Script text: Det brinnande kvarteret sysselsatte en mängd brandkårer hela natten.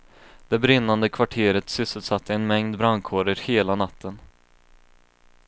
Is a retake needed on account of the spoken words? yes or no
no